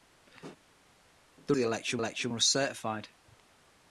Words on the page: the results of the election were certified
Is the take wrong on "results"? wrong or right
wrong